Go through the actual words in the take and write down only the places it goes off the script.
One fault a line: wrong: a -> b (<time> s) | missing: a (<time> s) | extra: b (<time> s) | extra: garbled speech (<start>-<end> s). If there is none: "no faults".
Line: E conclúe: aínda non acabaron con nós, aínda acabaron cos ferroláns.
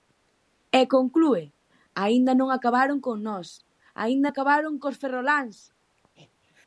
no faults